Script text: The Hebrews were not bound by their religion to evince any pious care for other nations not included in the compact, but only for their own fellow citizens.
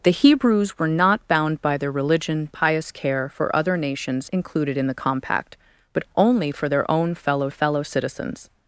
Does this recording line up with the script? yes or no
no